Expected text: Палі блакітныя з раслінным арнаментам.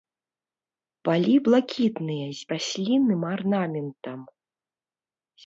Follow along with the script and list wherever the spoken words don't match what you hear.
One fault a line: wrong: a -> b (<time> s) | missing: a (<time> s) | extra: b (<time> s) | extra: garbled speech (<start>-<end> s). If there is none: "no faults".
no faults